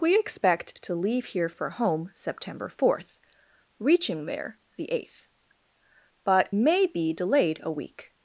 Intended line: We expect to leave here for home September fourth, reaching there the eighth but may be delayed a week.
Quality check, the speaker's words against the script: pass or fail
pass